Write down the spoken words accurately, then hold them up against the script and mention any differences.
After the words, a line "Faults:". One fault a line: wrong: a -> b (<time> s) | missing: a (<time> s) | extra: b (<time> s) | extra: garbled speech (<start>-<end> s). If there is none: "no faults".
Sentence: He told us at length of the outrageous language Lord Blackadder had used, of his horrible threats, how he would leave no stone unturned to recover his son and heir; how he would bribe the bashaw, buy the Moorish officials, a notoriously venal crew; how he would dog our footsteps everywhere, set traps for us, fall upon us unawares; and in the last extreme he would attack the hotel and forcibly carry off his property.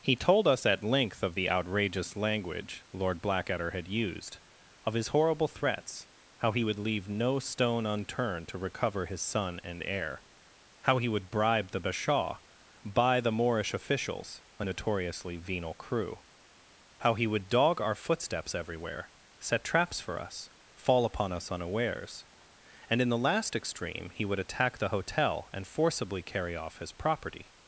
He told us at length of the outrageous language Lord Blackadder had used, of his horrible threats, how he would leave no stone unturned to recover his son and heir; how he would bribe the bashaw, buy the Moorish officials, a notoriously venal crew; how he would dog our footsteps everywhere, set traps for us, fall upon us unawares; and in the last extreme he would attack the hotel and forcibly carry off his property.
Faults:
no faults